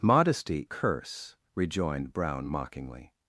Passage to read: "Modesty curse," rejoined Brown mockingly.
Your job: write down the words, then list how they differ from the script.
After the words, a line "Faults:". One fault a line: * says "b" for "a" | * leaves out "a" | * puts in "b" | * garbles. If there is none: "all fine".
"Modesty curse," rejoined Brown mockingly.
Faults:
all fine